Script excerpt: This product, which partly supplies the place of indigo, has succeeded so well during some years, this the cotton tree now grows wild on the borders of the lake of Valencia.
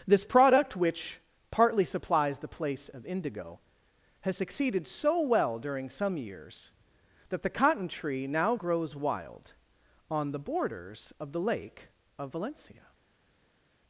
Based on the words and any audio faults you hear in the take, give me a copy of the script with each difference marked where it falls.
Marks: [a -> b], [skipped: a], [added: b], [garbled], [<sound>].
This product, which partly supplies the place of indigo, has succeeded so well during some years, [this -> that] the cotton tree now grows wild on the borders of the lake of Valencia.